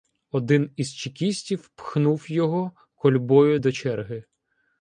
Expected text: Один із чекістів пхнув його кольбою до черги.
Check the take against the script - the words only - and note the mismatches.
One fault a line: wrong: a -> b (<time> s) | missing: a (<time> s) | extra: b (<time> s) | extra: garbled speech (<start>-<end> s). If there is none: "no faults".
no faults